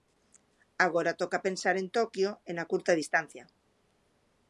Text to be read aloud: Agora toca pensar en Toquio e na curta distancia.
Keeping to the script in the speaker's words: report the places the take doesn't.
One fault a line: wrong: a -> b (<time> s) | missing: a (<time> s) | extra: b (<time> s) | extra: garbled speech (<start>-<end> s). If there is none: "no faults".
no faults